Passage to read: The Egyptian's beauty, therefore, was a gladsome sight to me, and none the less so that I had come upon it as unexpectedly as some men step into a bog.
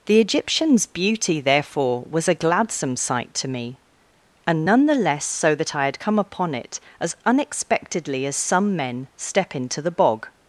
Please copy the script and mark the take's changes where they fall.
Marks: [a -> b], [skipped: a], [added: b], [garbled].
The Egyptian's beauty, therefore, was a gladsome sight to me, and none the less so that I had come upon it as unexpectedly as some men step into [a -> the] bog.